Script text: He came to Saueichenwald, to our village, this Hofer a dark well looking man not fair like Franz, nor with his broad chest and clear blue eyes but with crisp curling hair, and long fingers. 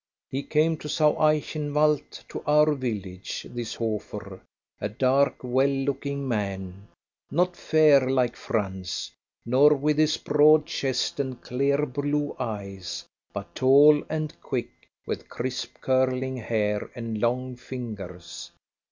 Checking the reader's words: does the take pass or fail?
fail